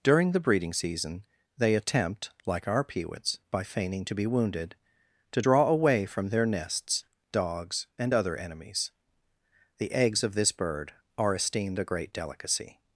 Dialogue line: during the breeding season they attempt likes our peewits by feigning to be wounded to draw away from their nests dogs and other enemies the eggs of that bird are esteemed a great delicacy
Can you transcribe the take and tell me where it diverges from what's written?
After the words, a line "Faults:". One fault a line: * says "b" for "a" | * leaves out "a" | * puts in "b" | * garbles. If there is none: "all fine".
during the breeding season they attempt like our peewits by feigning to be wounded to draw away from their nests dogs and other enemies the eggs of this bird are esteemed a great delicacy
Faults:
* says "like" for "likes"
* says "this" for "that"